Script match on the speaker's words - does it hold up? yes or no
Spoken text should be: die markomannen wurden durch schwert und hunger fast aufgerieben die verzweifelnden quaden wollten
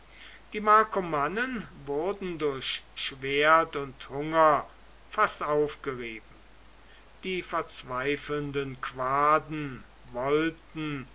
yes